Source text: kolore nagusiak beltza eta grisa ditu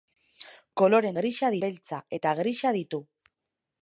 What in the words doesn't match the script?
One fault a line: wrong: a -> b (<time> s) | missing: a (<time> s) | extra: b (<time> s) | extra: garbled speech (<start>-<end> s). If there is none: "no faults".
wrong: nagusiak -> grisa (1.2 s)